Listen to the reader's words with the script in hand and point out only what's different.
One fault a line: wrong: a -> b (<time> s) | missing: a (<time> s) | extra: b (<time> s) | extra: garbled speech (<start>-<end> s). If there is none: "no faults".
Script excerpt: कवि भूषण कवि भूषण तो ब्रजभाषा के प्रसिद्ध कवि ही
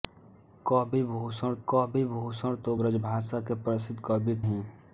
no faults